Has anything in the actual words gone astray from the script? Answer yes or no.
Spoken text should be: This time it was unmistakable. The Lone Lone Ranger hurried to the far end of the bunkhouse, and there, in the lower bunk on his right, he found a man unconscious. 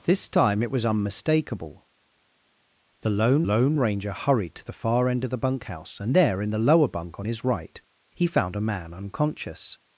no